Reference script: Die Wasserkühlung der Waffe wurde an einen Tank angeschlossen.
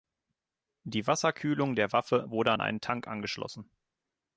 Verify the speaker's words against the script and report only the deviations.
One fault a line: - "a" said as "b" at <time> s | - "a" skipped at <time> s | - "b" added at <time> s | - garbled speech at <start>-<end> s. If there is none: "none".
none